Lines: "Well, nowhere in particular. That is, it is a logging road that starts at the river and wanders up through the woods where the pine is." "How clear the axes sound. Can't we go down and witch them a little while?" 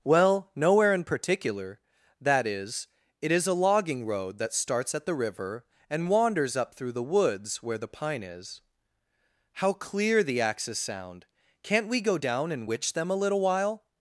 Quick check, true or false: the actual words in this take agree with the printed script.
true